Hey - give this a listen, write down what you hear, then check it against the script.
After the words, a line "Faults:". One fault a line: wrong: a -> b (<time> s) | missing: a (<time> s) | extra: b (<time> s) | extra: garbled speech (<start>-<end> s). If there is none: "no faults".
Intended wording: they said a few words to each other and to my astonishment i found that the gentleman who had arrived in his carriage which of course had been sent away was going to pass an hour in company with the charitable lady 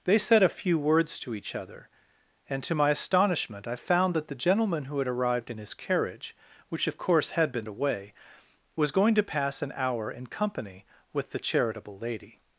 they said a few words to each other and to my astonishment i found that the gentleman who had arrived in his carriage which of course had been away was going to pass an hour in company with the charitable lady
Faults:
missing: sent (7.7 s)